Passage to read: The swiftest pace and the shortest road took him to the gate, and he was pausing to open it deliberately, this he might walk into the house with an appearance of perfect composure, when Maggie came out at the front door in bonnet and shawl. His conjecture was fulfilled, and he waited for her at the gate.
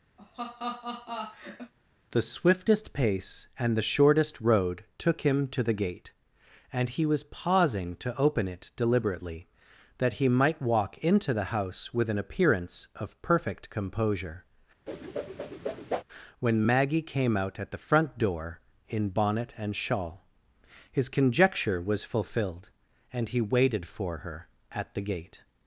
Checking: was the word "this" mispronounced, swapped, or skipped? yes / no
yes